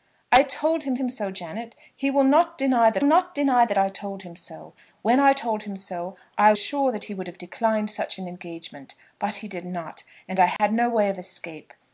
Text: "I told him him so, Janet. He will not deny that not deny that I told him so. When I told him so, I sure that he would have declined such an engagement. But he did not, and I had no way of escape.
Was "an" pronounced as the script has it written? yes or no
yes